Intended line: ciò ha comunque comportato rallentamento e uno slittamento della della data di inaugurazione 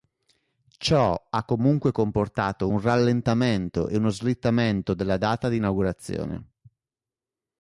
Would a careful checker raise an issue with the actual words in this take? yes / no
yes